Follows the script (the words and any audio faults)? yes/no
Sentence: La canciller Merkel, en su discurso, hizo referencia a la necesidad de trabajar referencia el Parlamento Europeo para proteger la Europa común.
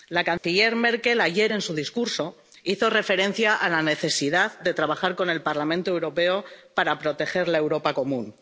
no